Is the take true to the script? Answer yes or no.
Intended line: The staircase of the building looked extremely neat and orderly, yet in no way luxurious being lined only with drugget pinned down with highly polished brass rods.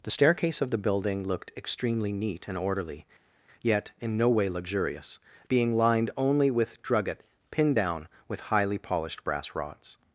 yes